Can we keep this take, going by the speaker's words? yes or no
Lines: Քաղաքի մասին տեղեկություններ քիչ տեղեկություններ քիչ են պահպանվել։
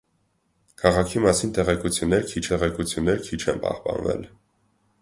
yes